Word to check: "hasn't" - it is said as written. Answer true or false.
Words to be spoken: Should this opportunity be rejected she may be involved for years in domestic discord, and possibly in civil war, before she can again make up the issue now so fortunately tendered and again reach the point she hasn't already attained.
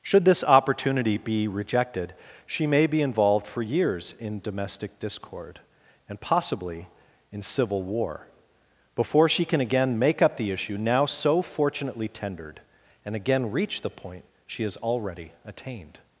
false